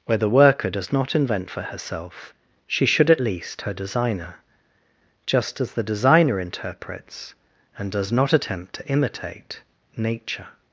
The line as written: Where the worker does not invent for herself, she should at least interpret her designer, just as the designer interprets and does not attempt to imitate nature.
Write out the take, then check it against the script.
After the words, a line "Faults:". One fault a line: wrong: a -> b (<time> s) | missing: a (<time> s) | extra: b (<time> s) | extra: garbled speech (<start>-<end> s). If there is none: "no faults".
Where the worker does not invent for herself, she should at least her designer, just as the designer interprets and does not attempt to imitate nature.
Faults:
missing: interpret (3.6 s)